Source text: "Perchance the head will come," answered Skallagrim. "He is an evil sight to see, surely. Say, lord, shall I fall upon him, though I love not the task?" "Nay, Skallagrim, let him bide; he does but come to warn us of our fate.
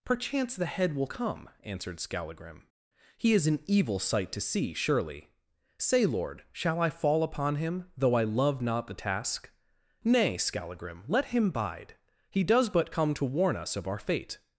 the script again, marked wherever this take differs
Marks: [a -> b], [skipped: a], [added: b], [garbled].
"Perchance the head will come," answered Skallagrim. "He is an evil sight to see, surely. Say, lord, shall I fall upon him, though I love not the task?" "Nay, Skallagrim, let him bide; he does but come to warn us of our fate.